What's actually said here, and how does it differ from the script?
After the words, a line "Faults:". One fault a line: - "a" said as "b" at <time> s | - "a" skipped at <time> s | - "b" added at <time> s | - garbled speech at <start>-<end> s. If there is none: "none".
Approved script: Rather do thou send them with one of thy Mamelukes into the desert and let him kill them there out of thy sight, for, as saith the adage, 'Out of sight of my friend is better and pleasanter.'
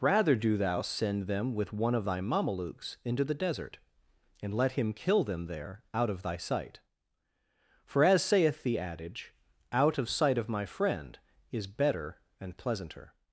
Rather do thou send them with one of thy Mamelukes into the desert and let him kill them there out of thy sight, for, as saith the adage, 'Out of sight of my friend is better and pleasanter.'
Faults:
none